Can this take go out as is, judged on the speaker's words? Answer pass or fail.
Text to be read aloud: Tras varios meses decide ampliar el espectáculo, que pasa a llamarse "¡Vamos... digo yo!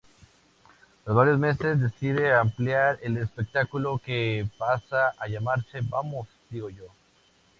pass